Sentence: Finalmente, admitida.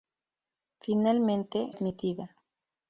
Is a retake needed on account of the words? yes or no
no